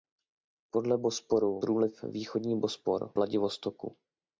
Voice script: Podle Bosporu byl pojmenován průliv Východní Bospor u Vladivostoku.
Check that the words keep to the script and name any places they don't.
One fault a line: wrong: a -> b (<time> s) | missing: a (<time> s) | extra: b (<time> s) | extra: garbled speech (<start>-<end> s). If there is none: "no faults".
missing: byl pojmenován (1.6 s)
missing: u (3.1 s)